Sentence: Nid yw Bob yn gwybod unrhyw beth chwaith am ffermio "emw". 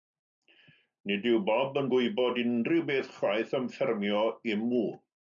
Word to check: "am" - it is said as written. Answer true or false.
true